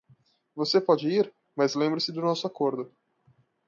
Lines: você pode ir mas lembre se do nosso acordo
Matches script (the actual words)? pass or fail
pass